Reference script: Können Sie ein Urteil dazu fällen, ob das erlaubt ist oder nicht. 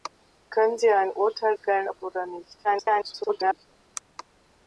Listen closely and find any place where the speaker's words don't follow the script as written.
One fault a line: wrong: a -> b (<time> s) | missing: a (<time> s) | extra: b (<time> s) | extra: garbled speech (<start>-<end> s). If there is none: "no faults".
missing: dazu (1.5 s)
missing: das erlaubt ist (2.0 s)
extra: garbled speech (2.6-3.7 s)